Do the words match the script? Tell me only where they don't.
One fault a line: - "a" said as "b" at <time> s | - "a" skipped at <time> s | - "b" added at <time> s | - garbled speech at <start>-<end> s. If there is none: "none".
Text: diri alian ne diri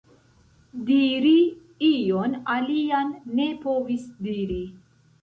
- "ion" added at 1.9 s
- "povis" added at 3.7 s